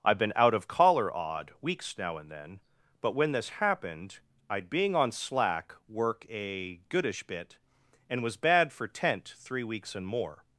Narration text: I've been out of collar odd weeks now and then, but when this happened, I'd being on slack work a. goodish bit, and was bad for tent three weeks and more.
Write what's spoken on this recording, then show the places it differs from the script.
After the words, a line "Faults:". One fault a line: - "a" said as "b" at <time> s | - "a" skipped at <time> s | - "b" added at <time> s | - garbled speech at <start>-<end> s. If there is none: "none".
I've been out of collar odd weeks now and then, but when this happened, I'd being on slack work a. goodish bit, and was bad for tent three weeks and more.
Faults:
none